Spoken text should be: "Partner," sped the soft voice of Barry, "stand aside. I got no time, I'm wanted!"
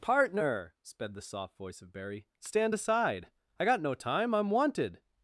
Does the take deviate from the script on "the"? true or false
false